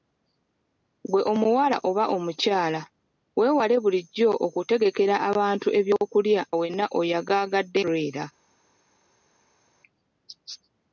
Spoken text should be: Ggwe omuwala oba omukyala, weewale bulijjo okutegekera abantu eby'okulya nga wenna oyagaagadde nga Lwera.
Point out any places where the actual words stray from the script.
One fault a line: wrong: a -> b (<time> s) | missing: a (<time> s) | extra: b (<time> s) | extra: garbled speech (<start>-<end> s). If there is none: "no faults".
missing: nga (6.4 s)
missing: nga (7.8 s)